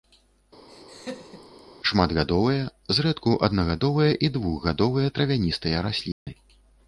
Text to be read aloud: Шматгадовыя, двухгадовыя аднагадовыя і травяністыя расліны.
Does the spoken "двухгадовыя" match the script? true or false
false